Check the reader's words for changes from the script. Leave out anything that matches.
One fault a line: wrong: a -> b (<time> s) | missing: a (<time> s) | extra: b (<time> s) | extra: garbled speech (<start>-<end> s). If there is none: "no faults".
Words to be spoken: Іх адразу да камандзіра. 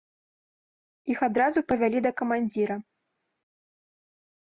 extra: павялі (1.7 s)